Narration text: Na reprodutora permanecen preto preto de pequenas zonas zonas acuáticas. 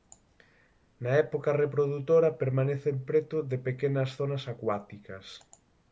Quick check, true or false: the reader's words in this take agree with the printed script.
false